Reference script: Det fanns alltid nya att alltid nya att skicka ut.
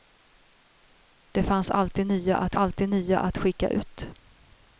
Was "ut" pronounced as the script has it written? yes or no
yes